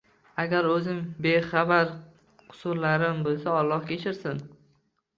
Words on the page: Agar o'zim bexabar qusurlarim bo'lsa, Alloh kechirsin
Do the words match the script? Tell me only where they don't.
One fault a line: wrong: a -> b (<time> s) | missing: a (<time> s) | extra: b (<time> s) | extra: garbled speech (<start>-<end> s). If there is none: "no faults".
no faults